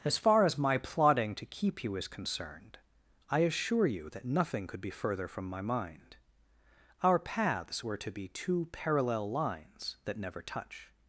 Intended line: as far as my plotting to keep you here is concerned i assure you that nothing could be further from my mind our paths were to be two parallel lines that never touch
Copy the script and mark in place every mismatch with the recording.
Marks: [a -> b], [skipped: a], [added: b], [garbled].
as far as my plotting to keep you [skipped: here] is concerned i assure you that nothing could be further from my mind our paths were to be two parallel lines that never touch